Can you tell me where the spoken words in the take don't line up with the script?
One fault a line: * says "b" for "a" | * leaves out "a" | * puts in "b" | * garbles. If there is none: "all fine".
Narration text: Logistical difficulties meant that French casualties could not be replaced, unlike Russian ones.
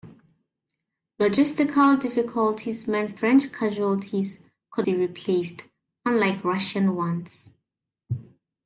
* leaves out "that"
* leaves out "not"